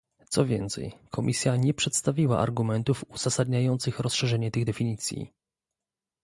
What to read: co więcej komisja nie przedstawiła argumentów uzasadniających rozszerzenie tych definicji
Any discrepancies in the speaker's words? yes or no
no